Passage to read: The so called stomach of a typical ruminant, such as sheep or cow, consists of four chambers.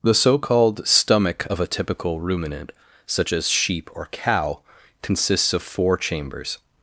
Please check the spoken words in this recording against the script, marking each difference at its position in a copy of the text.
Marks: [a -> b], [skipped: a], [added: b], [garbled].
The so called stomach of a typical ruminant, such as sheep or cow, consists of four chambers.